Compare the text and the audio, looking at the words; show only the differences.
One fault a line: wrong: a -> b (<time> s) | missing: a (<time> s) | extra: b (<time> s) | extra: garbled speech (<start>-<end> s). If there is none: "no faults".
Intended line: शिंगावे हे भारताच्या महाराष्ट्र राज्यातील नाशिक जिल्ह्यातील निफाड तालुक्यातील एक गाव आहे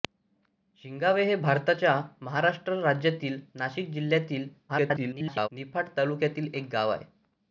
extra: garbled speech (4.7-5.5 s)